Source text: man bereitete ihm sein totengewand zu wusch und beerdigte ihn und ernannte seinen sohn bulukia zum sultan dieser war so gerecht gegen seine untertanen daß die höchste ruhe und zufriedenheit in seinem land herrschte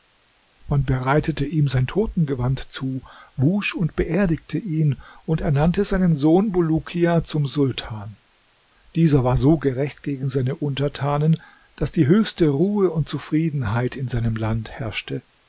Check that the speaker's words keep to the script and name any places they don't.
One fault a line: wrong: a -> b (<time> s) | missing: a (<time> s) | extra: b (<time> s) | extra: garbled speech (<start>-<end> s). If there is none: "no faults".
no faults